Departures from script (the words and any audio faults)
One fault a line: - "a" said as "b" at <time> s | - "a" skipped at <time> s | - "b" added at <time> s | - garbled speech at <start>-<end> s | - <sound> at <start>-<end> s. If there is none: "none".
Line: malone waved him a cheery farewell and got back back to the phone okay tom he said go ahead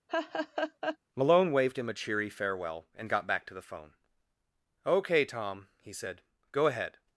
- laugh at 0.1-1.0 s
- "back" skipped at 3.4 s